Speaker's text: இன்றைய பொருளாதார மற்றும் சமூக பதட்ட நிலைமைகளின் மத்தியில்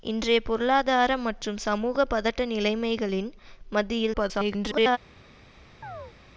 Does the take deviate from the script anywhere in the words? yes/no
yes